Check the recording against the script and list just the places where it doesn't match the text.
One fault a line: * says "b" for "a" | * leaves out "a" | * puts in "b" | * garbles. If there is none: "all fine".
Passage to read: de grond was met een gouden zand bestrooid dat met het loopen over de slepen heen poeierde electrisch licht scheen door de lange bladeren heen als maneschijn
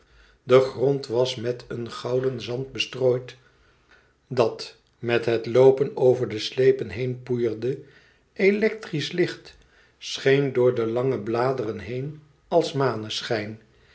all fine